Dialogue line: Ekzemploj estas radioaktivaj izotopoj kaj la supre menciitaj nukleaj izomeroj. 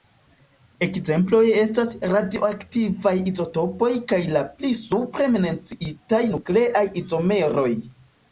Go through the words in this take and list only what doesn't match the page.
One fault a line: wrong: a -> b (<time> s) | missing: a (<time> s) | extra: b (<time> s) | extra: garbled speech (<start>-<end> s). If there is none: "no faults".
extra: pli (4.5 s)